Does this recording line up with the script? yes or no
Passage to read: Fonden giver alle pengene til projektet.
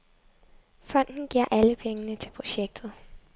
yes